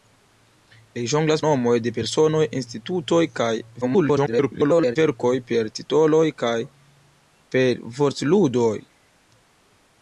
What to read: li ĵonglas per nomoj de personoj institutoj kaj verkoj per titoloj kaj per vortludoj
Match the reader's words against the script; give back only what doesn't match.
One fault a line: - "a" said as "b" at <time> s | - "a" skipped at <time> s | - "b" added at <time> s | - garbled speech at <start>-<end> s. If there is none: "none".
- "per" skipped at 1.4 s
- garbled speech at 3.8-5.0 s